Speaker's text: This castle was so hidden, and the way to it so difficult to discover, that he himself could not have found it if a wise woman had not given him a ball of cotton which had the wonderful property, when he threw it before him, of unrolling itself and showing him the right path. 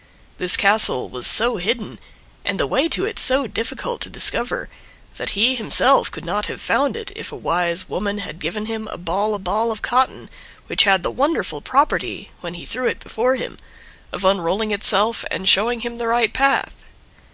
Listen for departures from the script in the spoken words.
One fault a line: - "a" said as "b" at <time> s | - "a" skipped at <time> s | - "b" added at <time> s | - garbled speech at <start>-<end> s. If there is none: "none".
- "not" skipped at 8.4 s
- "ball" added at 9.4 s